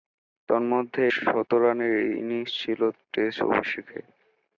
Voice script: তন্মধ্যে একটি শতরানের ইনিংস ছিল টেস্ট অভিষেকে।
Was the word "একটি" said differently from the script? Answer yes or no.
yes